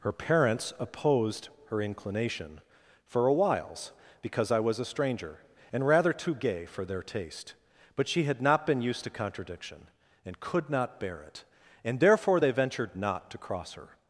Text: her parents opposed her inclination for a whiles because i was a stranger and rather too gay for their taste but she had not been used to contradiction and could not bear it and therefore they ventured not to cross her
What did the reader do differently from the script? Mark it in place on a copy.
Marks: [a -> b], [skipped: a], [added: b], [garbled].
her parents opposed her inclination for a whiles because i was a stranger and rather too gay for their taste but she had not been used to contradiction and could not bear it and therefore they ventured not to cross her